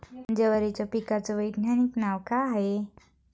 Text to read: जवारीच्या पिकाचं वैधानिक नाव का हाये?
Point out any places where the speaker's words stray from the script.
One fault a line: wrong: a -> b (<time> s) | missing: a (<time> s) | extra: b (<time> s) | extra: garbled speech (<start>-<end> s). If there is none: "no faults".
no faults